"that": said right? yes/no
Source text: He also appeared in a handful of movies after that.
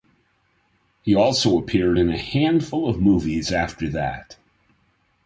yes